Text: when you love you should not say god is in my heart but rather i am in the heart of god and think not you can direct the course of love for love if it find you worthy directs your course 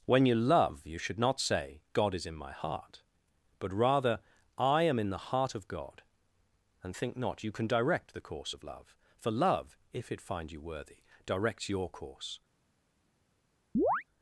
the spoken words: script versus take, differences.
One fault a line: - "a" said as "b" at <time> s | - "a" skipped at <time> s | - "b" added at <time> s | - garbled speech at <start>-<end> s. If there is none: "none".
none